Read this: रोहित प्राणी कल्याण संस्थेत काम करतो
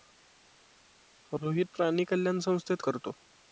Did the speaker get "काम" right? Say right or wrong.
wrong